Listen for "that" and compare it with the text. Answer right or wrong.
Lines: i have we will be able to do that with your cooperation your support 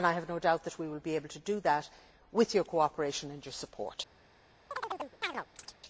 right